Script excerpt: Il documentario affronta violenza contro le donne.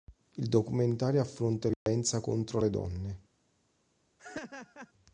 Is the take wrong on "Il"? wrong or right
right